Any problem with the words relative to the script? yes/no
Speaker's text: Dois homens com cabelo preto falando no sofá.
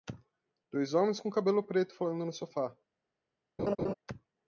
no